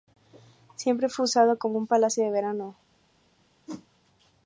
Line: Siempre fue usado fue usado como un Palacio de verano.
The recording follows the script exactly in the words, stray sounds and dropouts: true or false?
false